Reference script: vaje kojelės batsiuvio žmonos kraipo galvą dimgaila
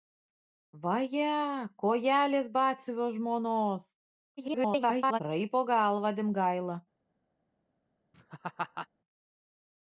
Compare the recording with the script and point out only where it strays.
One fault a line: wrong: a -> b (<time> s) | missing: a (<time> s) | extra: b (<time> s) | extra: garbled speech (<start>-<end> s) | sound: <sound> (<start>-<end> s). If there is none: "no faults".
extra: garbled speech (4.4-5.2 s)
sound: laugh (8.1-8.9 s)